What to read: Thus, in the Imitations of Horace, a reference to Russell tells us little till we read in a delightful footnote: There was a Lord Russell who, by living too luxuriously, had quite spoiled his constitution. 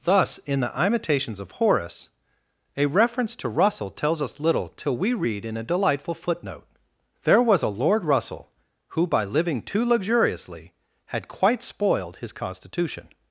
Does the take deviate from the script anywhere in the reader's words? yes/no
no